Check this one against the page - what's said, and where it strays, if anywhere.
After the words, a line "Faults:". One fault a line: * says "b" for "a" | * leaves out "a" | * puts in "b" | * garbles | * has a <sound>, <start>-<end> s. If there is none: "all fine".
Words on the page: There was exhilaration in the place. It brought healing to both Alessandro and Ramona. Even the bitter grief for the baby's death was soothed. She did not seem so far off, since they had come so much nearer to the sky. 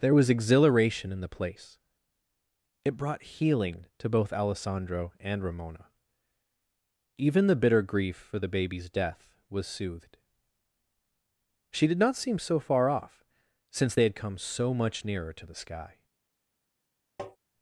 There was exhilaration in the place. It brought healing to both Alessandro and Ramona. Even the bitter grief for the baby's death was soothed. She did not seem so far off, since they had come so much nearer to the sky.
Faults:
* has a tap, 17.2-17.4 s